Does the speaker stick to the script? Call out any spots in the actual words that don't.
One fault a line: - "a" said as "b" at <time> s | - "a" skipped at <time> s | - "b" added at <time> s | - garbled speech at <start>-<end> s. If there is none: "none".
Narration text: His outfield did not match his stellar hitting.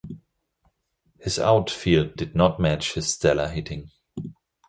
none